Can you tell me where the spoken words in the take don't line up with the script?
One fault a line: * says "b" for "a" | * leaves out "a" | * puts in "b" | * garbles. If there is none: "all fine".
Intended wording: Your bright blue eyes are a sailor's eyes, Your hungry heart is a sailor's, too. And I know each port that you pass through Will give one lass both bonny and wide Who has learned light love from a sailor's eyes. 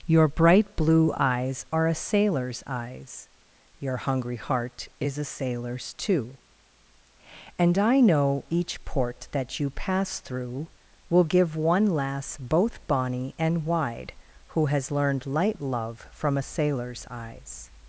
all fine